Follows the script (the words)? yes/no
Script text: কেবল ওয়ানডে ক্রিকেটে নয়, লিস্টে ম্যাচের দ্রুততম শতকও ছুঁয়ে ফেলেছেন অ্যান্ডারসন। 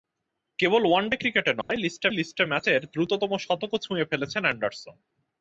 no